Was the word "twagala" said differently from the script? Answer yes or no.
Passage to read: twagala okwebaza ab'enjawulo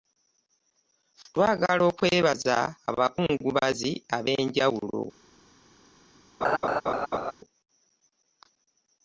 no